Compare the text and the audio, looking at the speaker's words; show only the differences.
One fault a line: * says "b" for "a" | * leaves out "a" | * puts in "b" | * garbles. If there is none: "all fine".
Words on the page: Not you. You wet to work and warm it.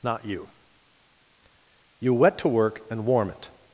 all fine